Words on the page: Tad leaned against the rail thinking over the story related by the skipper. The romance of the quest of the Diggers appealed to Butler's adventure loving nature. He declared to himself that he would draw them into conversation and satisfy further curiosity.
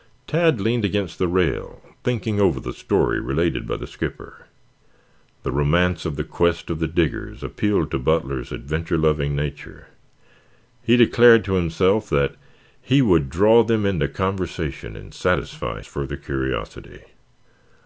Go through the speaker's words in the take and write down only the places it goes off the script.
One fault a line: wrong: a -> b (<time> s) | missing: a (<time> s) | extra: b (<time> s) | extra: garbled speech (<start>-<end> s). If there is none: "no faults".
no faults